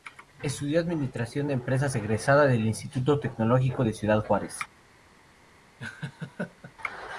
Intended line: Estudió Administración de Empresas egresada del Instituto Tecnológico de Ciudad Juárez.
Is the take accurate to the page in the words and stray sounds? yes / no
no